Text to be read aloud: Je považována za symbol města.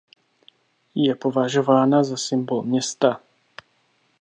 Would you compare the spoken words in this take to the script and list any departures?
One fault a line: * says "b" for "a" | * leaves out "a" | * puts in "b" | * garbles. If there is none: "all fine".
all fine